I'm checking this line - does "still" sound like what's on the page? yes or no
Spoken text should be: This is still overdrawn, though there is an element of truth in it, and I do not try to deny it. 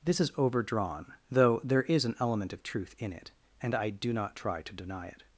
no